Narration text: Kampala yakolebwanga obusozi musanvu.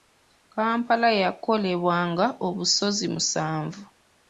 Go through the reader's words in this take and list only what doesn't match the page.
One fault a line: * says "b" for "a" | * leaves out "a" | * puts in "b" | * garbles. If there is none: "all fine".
all fine